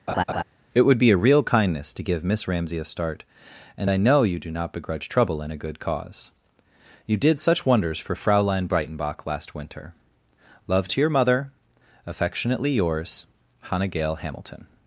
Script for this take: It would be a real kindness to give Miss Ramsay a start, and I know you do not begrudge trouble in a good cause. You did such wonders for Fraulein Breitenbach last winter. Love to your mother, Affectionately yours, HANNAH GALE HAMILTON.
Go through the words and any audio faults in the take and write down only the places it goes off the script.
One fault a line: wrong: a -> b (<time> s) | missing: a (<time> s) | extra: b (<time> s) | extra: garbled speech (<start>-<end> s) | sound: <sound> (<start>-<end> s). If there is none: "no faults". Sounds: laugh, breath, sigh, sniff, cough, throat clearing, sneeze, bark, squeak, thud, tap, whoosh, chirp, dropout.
sound: laugh (0.1-0.4 s)